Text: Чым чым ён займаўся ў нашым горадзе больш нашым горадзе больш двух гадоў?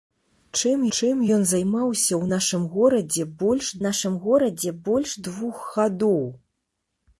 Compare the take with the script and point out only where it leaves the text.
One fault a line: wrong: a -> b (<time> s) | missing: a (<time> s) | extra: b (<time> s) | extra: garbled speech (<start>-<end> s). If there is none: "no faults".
no faults